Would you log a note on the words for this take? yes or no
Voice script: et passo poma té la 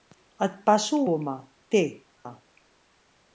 no